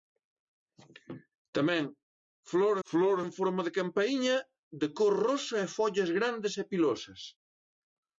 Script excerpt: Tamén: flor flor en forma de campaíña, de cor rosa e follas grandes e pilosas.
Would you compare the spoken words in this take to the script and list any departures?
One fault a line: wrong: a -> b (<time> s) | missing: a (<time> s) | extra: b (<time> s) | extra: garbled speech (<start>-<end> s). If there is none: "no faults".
no faults